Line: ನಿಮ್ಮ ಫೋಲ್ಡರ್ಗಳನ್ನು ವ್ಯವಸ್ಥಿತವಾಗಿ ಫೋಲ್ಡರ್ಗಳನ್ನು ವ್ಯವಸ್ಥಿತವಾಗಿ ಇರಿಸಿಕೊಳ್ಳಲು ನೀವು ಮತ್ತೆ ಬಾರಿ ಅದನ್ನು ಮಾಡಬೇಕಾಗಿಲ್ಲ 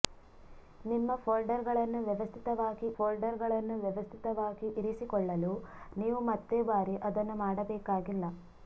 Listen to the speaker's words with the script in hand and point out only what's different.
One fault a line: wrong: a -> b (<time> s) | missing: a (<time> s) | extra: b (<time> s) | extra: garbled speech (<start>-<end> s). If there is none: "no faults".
no faults